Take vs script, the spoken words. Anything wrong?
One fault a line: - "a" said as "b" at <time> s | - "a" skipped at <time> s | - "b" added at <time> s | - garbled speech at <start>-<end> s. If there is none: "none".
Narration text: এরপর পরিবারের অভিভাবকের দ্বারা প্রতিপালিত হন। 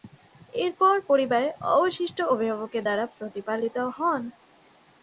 - "অবশিষ্ট" added at 1.7 s